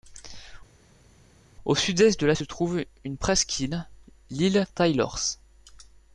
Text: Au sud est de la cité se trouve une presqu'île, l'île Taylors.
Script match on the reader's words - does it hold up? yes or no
no